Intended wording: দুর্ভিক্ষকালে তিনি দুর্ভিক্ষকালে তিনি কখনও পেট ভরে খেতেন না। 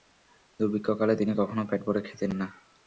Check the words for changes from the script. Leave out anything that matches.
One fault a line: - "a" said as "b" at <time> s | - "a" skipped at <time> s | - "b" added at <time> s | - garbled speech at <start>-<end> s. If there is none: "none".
- "দুর্ভিক্ষকালে তিনি" skipped at 1.3 s